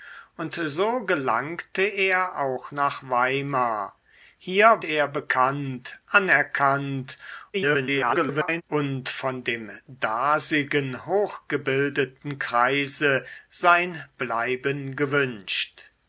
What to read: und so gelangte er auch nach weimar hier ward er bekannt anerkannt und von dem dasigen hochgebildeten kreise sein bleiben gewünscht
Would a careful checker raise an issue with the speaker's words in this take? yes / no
yes